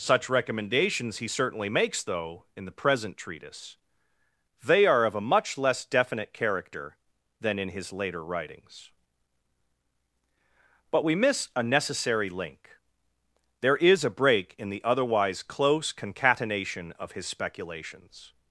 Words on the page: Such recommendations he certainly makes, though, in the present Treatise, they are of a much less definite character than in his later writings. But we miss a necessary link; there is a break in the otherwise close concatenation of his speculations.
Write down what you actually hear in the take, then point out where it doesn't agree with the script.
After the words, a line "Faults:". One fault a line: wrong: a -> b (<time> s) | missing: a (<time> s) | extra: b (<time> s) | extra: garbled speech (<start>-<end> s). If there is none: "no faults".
Such recommendations he certainly makes, though, in the present Treatise, they are of a much less definite character than in his later writings. But we miss a necessary link; there is a break in the otherwise close concatenation of his speculations.
Faults:
no faults